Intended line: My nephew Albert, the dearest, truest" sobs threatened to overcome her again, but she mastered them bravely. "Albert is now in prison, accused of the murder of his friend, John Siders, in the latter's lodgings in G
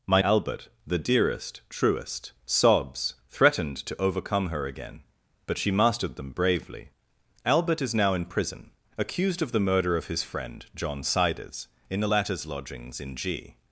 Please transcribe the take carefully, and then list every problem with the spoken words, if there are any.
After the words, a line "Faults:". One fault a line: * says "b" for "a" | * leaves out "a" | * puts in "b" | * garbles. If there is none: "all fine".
My Albert, the dearest, truest" sobs threatened to overcome her again, but she mastered them bravely. "Albert is now in prison, accused of the murder of his friend, John Siders, in the latter's lodgings in G
Faults:
* leaves out "nephew"